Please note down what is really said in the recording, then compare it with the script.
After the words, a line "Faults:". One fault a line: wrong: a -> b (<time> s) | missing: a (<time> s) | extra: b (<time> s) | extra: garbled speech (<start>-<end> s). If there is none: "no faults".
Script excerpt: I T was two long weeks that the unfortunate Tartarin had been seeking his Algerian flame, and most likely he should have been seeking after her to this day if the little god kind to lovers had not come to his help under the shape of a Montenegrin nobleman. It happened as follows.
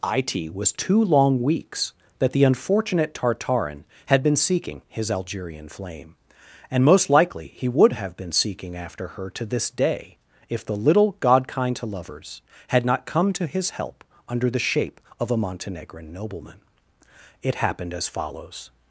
I T was two long weeks that the unfortunate Tartarin had been seeking his Algerian flame, and most likely he would have been seeking after her to this day if the little god kind to lovers had not come to his help under the shape of a Montenegrin nobleman. It happened as follows.
Faults:
wrong: should -> would (7.7 s)